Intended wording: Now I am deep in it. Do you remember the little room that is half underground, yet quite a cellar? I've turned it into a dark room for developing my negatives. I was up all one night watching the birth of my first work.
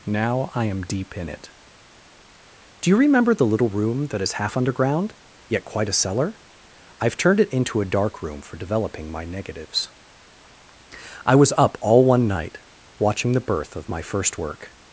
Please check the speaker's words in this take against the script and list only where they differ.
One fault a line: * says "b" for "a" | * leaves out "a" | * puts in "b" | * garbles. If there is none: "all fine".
all fine